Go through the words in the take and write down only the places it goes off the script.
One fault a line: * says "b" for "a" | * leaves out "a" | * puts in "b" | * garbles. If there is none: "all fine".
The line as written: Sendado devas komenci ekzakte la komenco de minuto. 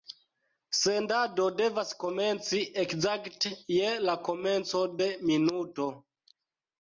* puts in "je"